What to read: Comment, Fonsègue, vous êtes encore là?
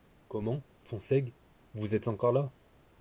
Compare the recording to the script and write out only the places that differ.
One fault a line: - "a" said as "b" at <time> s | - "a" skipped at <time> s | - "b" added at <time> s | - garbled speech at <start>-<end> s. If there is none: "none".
none